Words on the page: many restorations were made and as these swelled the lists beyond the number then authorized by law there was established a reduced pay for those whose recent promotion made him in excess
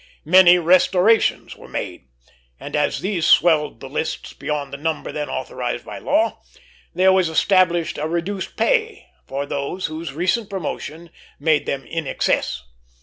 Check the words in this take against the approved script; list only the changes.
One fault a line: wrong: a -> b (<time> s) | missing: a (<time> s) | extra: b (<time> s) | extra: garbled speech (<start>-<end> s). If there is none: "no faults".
wrong: him -> them (11.7 s)